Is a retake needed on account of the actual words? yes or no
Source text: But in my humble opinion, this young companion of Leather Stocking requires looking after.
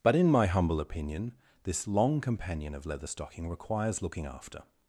yes